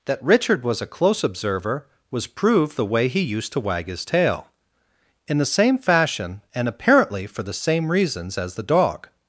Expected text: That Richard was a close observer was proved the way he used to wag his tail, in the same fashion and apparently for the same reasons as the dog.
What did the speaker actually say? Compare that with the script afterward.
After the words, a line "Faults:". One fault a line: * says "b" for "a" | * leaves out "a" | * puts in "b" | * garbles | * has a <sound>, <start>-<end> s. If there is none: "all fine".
That Richard was a close observer was proved the way he used to wag his tail, in the same fashion and apparently for the same reasons as the dog.
Faults:
all fine